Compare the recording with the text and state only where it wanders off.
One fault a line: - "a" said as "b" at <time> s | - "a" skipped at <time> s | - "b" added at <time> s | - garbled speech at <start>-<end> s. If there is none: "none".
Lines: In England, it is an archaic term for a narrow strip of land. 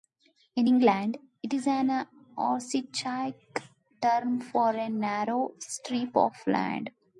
none